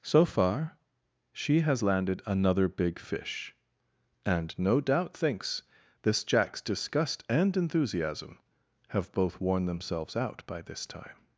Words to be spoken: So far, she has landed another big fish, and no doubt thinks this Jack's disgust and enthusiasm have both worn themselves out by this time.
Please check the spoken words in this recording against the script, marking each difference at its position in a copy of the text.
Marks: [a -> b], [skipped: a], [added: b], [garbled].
So far, she has landed another big fish, and no doubt thinks this Jack's disgust and enthusiasm have both worn themselves out by this time.